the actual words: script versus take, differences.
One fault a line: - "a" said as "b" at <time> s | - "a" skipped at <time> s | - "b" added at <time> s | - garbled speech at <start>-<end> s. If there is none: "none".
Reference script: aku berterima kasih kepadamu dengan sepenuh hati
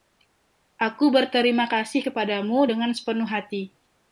none